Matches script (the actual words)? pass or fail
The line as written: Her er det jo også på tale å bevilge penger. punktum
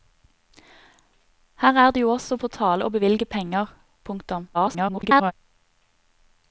fail